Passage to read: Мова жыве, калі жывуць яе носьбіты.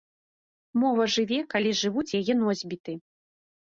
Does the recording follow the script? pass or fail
pass